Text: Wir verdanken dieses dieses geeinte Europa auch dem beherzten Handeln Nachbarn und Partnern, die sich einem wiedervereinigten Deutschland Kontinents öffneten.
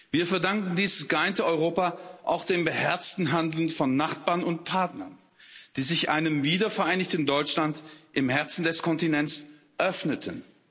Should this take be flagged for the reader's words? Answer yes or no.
yes